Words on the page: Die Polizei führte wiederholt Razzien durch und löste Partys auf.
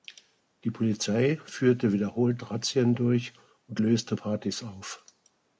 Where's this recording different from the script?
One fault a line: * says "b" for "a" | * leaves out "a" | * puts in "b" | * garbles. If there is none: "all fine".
all fine